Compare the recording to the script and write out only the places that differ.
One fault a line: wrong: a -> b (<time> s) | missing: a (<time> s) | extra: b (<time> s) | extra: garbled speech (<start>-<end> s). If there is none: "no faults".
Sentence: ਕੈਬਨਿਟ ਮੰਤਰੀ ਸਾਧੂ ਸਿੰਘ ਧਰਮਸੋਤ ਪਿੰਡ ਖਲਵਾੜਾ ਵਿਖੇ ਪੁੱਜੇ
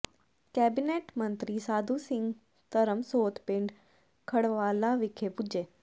no faults